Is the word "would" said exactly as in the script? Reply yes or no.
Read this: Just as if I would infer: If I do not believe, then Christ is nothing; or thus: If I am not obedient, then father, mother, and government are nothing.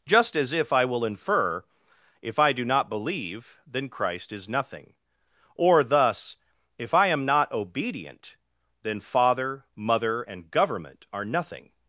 no